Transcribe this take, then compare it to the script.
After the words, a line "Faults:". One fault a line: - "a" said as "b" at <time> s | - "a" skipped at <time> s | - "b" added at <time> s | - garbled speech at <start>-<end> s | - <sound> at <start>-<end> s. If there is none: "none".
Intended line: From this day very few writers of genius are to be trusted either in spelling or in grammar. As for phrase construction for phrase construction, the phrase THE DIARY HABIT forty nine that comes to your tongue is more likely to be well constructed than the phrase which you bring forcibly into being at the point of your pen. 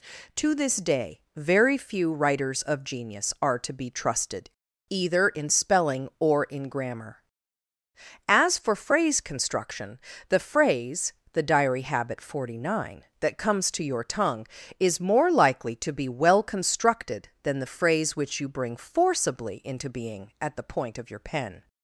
To this day very few writers of genius are to be trusted either in spelling or in grammar. As for phrase construction, the phrase THE DIARY HABIT forty nine that comes to your tongue is more likely to be well constructed than the phrase which you bring forcibly into being at the point of your pen.
Faults:
- "From" said as "To" at 0.3 s
- "for phrase construction" skipped at 10.0 s